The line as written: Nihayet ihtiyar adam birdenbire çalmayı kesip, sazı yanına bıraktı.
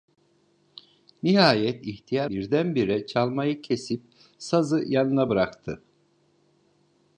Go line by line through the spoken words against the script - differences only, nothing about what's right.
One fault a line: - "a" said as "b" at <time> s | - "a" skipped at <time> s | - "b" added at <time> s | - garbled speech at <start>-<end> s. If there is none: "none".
- "adam" skipped at 2.3 s